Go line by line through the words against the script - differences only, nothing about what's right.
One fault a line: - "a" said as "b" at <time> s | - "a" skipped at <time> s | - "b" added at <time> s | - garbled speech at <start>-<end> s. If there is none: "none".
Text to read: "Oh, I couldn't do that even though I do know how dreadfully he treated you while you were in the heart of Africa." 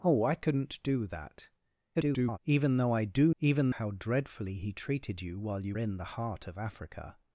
- garbled speech at 1.9-2.4 s
- "know" said as "even" at 3.4 s
- "were" skipped at 5.7 s